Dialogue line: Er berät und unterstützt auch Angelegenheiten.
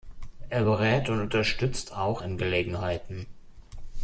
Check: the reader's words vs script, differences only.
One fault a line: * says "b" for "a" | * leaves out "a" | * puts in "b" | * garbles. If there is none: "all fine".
all fine